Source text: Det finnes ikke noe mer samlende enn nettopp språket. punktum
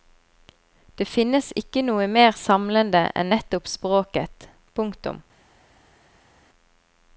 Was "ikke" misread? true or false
false